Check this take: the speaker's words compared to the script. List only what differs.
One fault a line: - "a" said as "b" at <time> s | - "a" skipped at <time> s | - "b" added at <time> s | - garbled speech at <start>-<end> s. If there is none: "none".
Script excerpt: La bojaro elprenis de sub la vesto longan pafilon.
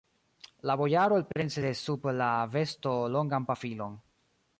none